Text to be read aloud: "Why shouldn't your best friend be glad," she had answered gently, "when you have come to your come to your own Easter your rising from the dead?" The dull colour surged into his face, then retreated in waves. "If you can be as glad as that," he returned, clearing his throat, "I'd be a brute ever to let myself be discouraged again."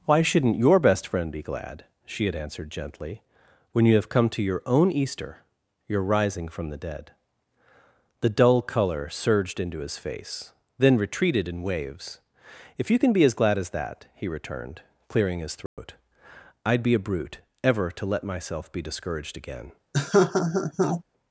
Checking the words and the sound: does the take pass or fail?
fail